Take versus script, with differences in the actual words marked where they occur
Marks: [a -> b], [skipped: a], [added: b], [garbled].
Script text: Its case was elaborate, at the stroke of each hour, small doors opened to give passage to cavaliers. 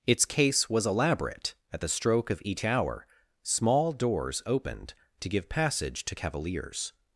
Its case was elaborate, at the stroke of each hour, small doors opened to give passage to cavaliers.